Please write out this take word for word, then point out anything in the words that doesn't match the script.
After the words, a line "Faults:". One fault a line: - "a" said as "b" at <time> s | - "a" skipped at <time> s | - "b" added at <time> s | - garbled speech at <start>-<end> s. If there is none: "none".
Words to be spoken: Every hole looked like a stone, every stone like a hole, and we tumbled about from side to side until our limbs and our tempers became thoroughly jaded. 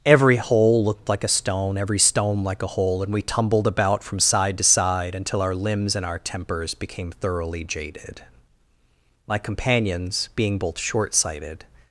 Every hole looked like a stone, every stone like a hole, and we tumbled about from side to side until our limbs and our tempers became thoroughly jaded. My companions, being both short sighted
Faults:
- "My companions being both short sighted" added at 9.3 s